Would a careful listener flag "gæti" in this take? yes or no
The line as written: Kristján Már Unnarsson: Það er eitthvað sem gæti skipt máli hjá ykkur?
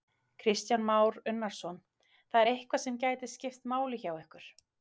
no